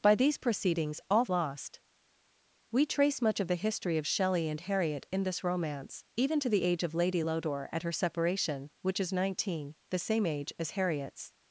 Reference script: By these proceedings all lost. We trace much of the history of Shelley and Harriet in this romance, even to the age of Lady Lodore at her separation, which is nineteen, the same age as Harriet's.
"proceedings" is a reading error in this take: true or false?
false